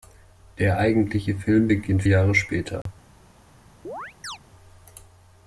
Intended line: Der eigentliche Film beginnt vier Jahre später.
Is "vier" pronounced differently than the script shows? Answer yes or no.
yes